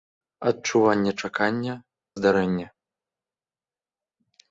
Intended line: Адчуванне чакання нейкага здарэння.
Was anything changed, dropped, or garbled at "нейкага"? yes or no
yes